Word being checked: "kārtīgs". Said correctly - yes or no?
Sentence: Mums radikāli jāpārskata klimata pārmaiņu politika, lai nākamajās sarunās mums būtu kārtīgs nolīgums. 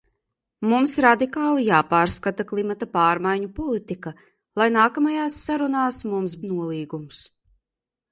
no